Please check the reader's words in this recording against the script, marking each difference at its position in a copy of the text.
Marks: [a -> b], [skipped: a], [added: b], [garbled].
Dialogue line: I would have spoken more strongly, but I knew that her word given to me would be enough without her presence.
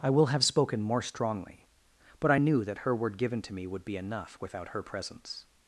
I [would -> will] have spoken more strongly, but I knew that her word given to me would be enough without her presence.